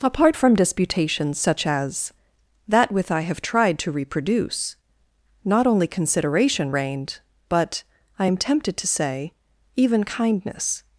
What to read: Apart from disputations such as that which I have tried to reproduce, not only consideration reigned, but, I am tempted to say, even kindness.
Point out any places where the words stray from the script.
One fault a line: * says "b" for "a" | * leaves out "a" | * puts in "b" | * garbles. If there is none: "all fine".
* says "with" for "which"